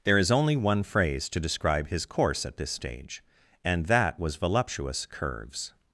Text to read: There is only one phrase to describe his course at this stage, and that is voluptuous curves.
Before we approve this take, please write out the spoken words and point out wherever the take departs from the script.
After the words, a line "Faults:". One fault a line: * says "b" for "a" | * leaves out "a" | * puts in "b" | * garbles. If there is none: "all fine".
There is only one phrase to describe his course at this stage, and that was voluptuous curves.
Faults:
* says "was" for "is"